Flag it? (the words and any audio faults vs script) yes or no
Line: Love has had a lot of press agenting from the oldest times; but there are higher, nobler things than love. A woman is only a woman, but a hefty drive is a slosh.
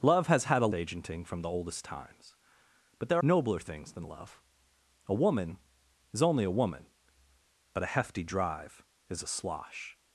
yes